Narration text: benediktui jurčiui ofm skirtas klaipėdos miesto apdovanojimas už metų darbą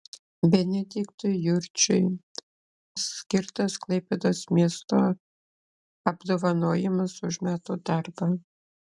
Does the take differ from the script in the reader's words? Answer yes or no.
yes